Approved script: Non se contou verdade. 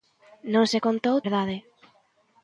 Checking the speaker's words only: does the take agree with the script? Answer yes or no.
yes